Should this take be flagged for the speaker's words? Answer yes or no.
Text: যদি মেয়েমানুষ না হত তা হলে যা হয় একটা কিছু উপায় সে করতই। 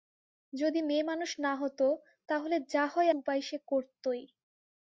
yes